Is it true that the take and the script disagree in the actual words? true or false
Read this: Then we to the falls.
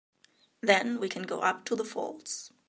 true